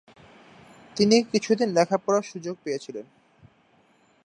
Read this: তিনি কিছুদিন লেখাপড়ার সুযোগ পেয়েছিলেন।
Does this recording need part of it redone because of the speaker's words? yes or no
no